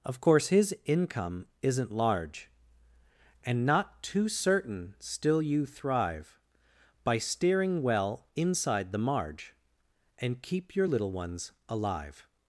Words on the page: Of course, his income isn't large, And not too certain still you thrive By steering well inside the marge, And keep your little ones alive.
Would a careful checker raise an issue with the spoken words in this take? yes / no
no